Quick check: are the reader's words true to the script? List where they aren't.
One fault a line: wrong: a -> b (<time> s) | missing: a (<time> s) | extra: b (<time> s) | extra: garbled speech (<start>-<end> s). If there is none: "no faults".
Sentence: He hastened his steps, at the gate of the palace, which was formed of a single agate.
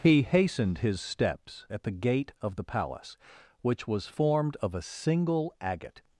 no faults